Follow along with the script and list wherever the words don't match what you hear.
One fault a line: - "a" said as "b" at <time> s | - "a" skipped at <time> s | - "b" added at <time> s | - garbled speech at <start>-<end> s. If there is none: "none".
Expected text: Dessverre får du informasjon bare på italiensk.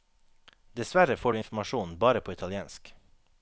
none